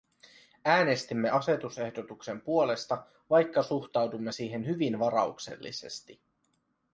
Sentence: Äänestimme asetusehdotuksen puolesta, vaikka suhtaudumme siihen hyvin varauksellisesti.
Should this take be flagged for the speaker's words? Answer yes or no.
no